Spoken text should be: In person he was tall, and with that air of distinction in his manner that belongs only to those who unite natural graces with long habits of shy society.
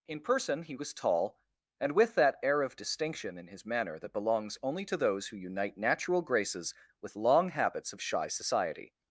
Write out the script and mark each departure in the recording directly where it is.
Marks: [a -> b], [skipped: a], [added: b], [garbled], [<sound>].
In person he was tall, and with that air of distinction in his manner that belongs only to those who unite natural graces with long habits of shy society.